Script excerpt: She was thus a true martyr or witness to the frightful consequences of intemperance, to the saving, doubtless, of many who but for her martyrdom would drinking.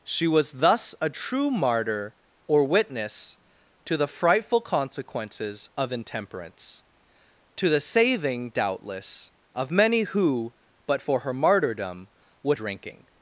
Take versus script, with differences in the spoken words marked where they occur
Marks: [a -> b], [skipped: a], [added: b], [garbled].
She was thus a true martyr or witness to the frightful consequences of intemperance, to the saving, doubtless, of many who but for her martyrdom would drinking.